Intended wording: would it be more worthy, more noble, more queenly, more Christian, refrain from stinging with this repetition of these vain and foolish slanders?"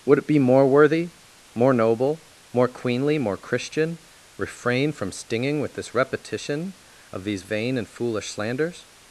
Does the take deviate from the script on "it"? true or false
false